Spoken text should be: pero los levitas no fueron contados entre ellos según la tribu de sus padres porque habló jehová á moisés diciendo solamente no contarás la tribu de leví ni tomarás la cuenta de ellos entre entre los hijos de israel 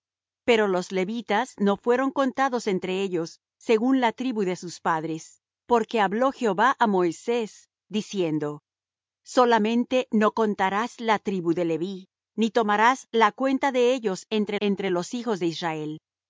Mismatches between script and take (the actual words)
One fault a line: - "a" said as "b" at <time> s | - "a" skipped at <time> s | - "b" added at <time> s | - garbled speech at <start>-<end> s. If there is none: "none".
none